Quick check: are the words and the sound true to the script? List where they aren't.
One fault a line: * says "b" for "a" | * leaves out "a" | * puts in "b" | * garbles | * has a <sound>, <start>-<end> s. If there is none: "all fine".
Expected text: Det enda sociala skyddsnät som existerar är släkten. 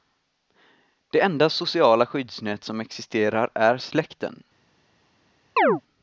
* has a chirp, 5.6-5.8 s